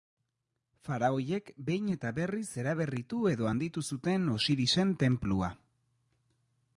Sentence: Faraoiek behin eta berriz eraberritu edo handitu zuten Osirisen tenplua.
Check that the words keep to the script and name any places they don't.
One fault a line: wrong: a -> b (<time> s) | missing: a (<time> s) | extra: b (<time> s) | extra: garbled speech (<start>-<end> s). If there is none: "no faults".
no faults